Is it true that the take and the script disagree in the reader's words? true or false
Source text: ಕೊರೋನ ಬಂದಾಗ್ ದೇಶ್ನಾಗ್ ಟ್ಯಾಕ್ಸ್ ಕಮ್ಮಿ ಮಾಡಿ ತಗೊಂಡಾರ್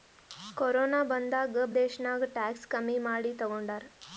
false